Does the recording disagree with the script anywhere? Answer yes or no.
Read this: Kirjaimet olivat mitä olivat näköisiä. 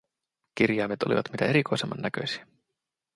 yes